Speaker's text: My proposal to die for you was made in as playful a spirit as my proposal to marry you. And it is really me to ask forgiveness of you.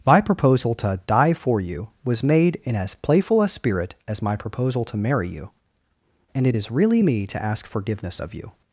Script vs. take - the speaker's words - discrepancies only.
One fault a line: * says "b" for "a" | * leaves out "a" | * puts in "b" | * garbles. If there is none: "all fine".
all fine